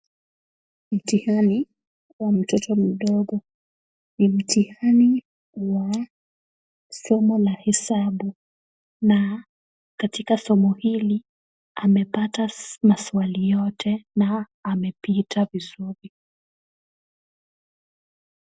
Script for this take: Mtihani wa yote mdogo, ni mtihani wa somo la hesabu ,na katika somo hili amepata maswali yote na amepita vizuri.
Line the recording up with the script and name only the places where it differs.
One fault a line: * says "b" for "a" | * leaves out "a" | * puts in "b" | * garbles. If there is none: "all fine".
* says "mtoto" for "yote"